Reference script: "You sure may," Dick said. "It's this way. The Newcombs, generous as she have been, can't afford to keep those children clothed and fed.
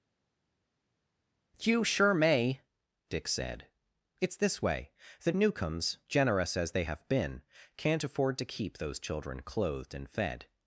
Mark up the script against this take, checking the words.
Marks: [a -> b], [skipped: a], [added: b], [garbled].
"You sure may," Dick said. "It's this way. The Newcombs, generous as [she -> they] have been, can't afford to keep those children clothed and fed.